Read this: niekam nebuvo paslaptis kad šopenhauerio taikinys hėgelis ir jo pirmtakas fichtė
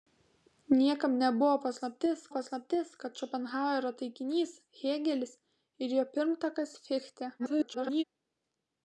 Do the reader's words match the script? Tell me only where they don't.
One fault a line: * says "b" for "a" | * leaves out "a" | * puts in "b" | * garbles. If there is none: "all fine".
* puts in "paslaptis"
* garbles